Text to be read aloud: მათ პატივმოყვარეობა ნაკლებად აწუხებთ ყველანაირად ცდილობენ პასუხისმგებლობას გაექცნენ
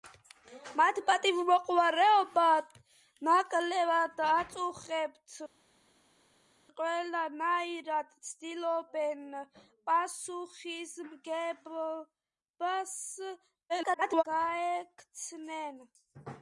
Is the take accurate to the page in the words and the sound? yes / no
no